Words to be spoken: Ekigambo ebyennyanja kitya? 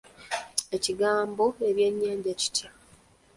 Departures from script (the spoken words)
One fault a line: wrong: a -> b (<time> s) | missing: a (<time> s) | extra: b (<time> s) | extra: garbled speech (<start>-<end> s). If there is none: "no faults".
no faults